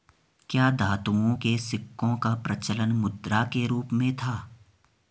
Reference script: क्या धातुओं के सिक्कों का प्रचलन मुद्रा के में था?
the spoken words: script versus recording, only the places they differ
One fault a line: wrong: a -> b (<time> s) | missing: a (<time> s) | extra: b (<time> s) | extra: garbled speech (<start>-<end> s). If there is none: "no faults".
extra: रूप (3.6 s)